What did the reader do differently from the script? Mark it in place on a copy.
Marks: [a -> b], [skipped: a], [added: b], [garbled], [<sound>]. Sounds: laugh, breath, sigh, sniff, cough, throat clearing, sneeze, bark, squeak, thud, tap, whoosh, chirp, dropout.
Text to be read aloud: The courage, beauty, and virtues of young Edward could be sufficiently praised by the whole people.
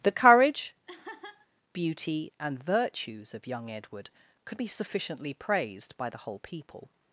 The courage, [laugh] beauty, and virtues of young Edward could be sufficiently praised by the whole people.